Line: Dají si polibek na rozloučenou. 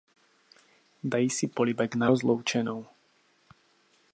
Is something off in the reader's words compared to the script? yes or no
no